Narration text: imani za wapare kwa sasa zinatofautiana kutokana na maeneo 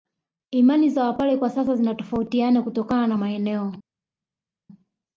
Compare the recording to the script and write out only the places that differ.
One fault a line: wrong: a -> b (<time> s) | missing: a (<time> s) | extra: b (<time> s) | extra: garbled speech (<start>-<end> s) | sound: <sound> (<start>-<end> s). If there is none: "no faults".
no faults